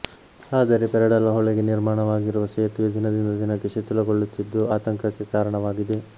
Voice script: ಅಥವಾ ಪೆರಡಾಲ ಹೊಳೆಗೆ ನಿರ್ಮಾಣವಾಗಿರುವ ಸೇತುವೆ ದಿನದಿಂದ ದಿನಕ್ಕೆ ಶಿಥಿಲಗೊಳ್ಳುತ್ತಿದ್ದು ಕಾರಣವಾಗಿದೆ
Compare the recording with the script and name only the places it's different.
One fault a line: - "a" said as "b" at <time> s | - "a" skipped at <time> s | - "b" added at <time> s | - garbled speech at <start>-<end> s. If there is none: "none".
- "ಅಥವಾ" said as "ಆದರೆ" at 0.5 s
- "ಆತಂಕಕ್ಕೆ" added at 4.8 s